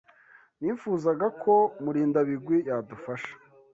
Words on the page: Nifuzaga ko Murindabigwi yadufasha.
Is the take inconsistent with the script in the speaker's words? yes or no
no